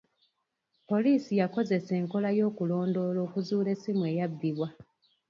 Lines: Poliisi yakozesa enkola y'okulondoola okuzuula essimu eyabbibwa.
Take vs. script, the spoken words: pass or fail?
pass